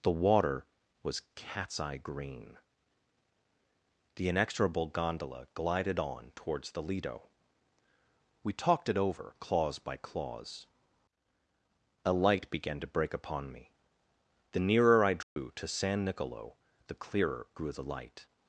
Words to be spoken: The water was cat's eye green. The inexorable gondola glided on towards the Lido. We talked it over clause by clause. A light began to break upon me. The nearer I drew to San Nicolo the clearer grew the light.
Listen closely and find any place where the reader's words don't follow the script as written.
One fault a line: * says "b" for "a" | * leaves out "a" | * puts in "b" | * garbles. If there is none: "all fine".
all fine